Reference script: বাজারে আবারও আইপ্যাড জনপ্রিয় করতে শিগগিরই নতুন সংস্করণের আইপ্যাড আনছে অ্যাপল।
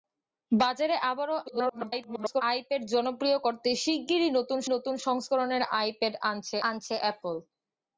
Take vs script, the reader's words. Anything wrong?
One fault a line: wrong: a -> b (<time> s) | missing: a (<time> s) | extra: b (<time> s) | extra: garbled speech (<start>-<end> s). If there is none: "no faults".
extra: garbled speech (1.5-2.4 s)
extra: নতুন (4.7 s)
extra: আনছে (6.7 s)